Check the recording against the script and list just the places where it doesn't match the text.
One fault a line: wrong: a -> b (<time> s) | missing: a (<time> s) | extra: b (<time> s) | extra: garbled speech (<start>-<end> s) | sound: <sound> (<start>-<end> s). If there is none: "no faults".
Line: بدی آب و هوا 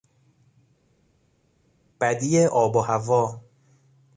no faults